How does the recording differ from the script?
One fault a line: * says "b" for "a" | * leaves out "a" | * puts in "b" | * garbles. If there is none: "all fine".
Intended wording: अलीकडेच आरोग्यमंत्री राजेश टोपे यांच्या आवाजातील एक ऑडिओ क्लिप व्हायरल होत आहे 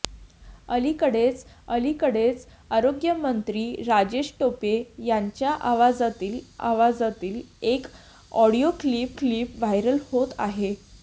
* puts in "अलीकडेच"
* puts in "आवाजातील"
* puts in "क्लिप"